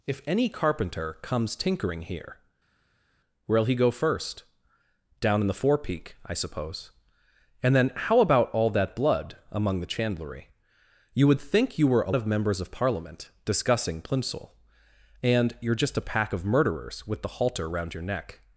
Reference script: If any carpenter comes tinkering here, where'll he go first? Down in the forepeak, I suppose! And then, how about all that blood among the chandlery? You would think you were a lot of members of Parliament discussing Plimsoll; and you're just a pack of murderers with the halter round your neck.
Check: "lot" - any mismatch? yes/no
yes